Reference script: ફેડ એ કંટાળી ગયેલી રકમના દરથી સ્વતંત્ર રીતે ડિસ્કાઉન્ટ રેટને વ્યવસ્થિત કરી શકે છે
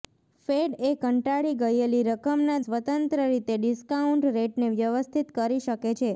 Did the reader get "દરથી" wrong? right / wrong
wrong